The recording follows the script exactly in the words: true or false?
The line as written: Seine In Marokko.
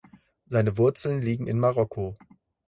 false